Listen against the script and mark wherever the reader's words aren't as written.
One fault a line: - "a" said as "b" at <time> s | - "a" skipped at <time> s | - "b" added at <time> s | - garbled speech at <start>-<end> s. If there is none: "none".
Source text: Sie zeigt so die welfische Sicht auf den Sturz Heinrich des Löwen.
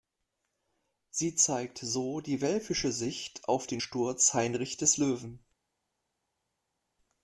none